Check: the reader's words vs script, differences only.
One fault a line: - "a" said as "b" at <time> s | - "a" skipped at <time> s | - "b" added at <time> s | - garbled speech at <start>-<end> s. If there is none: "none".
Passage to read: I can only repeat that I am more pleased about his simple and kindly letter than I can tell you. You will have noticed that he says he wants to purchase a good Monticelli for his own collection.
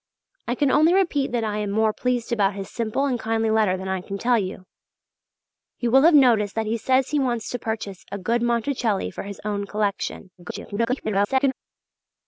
- garbled speech at 10.4-11.5 s